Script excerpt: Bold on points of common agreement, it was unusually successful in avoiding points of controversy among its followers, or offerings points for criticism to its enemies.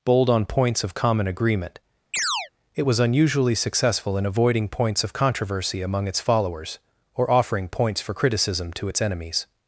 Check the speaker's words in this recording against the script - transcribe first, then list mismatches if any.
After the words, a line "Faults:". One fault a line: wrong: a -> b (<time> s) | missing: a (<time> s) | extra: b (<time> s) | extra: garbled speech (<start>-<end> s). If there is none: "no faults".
Bold on points of common agreement, it was unusually successful in avoiding points of controversy among its followers, or offering points for criticism to its enemies.
Faults:
wrong: offerings -> offering (7.3 s)